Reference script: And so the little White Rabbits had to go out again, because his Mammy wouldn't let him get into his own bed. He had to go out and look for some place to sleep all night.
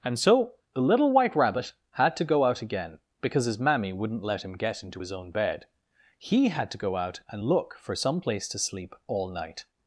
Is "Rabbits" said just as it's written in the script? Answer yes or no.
no